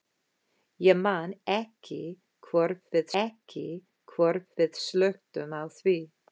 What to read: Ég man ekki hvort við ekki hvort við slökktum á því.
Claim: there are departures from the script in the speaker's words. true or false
false